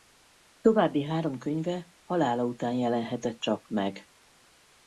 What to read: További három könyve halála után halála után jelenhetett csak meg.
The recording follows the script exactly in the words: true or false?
false